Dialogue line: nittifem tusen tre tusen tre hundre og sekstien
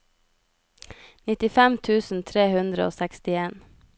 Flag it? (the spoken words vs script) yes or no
yes